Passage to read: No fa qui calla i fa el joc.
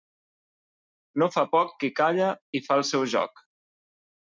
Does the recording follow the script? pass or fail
fail